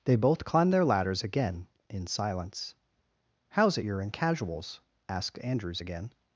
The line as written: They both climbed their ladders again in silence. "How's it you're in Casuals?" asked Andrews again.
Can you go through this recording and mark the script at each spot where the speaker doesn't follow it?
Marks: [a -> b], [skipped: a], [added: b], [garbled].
They both climbed their ladders again in silence. "How's it you're in Casuals?" asked Andrews again.